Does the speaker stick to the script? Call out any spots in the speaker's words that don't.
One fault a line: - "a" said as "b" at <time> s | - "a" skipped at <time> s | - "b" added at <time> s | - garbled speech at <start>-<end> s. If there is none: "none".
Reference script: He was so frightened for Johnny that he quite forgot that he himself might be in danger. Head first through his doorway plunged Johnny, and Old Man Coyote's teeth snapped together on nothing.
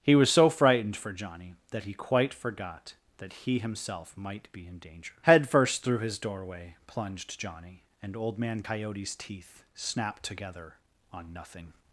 none